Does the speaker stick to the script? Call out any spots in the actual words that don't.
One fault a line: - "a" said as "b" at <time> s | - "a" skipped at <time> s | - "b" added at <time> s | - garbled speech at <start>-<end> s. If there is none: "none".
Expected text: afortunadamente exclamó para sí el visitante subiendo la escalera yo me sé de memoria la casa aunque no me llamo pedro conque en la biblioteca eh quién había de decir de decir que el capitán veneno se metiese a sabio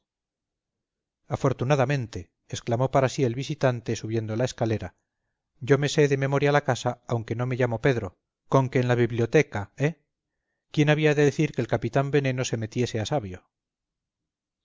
- "de decir" skipped at 11.5 s